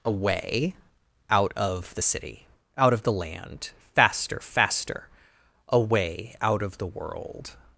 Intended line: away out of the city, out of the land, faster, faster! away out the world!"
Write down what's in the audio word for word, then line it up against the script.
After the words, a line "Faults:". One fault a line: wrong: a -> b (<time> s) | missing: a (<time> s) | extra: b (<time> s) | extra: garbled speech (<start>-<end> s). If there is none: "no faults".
away out of the city, out of the land, faster, faster! away out of the world!"
Faults:
extra: of (6.6 s)